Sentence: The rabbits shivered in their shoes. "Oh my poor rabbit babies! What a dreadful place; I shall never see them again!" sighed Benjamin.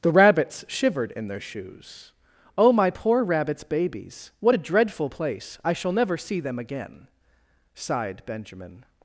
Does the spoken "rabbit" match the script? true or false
false